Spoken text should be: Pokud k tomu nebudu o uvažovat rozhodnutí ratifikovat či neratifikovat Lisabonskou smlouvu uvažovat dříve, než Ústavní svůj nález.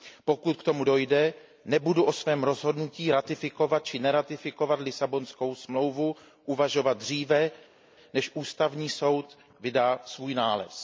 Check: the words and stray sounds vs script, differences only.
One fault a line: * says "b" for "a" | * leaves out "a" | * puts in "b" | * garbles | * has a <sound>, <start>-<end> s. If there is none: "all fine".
* puts in "dojde"
* says "svém" for "uvažovat"
* puts in "soud vydá"